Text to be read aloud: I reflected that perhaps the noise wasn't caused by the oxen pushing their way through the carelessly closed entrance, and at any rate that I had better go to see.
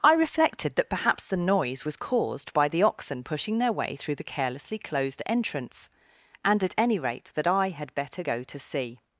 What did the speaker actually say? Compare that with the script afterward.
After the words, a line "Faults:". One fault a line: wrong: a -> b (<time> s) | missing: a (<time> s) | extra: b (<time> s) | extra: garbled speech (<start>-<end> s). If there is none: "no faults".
I reflected that perhaps the noise was caused by the oxen pushing their way through the carelessly closed entrance, and at any rate that I had better go to see.
Faults:
wrong: wasn't -> was (1.8 s)